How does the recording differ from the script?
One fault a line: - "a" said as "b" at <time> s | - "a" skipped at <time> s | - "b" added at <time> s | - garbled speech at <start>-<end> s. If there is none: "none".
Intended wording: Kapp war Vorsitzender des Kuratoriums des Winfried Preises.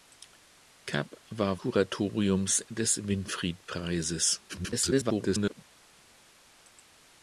- "Vorsitzender des" skipped at 1.6 s
- garbled speech at 4.5-5.6 s